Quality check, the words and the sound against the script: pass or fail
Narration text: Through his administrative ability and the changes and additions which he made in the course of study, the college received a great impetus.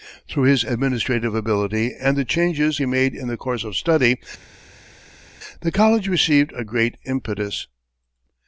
fail